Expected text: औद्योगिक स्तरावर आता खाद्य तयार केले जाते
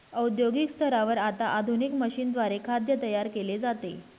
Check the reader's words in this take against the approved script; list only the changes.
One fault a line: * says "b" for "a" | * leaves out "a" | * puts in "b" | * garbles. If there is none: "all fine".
* puts in "आधुनिक मशीनद्वारे"